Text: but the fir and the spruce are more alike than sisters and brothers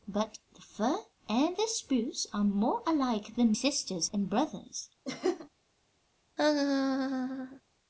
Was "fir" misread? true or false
false